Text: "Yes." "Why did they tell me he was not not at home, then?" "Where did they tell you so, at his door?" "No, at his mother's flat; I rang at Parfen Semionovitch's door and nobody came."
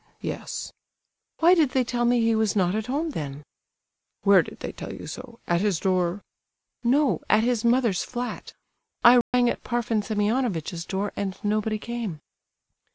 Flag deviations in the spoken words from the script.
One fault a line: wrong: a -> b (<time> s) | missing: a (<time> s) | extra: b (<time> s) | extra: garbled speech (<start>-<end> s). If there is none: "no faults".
missing: not (2.7 s)